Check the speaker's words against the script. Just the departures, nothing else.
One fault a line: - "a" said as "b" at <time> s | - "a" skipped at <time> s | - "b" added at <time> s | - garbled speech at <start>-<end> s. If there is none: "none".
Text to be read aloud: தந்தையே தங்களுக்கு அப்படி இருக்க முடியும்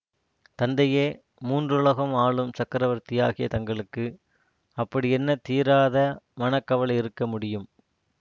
- "மூன்றுலகம் ஆளும் சக்கரவர்த்தியாகிய" added at 1.4 s
- "என்ன தீராத மனக்கவலை" added at 5.1 s